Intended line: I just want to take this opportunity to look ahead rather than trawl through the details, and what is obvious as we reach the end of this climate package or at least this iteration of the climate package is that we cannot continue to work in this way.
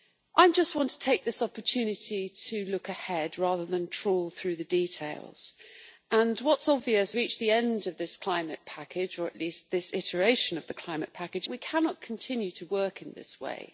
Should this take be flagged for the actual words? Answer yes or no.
yes